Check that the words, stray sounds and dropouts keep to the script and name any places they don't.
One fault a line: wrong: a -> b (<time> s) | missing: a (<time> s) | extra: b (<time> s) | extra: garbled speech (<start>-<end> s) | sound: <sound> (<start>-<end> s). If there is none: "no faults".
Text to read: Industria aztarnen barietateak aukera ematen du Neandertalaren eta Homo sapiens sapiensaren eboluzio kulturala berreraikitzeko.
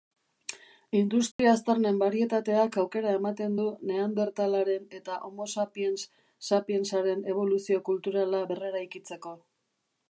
sound: dropout (1.3-1.4 s)